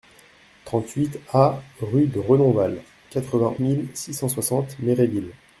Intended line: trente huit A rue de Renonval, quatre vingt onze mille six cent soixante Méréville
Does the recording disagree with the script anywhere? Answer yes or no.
yes